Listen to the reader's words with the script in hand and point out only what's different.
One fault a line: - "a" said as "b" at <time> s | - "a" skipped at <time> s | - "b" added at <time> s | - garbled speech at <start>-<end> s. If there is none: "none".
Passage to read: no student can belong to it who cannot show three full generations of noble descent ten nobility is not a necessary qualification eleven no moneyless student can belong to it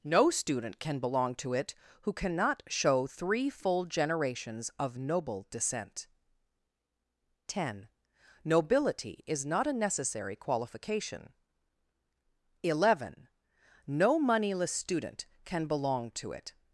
none